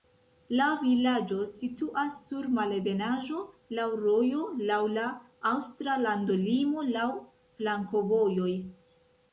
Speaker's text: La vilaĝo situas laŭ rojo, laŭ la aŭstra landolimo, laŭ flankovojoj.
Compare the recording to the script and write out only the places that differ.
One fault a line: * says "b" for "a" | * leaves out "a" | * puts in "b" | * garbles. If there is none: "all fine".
* puts in "sur malebenaĵo"